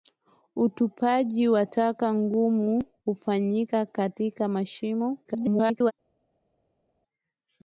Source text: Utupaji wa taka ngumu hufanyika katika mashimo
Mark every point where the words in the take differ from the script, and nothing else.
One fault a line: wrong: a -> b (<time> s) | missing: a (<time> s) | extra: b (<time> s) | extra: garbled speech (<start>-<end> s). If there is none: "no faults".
extra: garbled speech (5.2-5.9 s)